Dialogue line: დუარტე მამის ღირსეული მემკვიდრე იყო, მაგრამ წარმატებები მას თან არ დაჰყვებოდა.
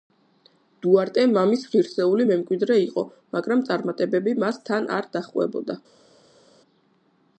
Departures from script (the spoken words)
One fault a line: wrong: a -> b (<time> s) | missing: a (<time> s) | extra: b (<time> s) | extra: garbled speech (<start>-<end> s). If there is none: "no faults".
no faults